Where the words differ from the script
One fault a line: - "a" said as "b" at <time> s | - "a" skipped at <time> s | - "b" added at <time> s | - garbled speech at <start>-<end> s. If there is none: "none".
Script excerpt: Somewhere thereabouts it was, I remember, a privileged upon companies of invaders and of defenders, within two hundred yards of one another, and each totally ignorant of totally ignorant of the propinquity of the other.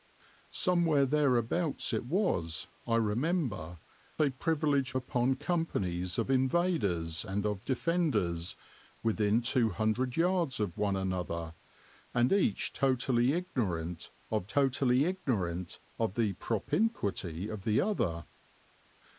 none